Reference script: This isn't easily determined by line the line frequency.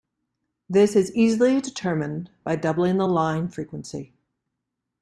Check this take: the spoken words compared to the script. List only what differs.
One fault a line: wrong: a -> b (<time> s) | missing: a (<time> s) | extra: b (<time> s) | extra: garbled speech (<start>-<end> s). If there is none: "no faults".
wrong: isn't -> is (0.9 s)
wrong: line -> doubling (2.5 s)